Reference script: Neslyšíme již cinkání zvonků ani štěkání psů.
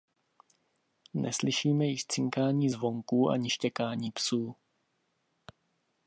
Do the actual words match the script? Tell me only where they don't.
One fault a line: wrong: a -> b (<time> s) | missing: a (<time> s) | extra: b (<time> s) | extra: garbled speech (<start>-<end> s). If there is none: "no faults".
no faults